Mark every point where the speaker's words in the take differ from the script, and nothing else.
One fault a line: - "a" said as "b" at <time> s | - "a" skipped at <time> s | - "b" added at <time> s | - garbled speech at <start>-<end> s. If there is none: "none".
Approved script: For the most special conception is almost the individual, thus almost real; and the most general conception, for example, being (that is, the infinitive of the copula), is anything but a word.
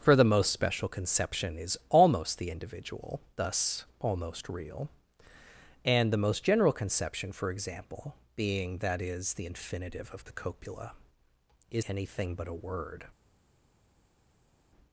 none